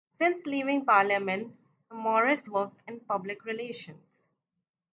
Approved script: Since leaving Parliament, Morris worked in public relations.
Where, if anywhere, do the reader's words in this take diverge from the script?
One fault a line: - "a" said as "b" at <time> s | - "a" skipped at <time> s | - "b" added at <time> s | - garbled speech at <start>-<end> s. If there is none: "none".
none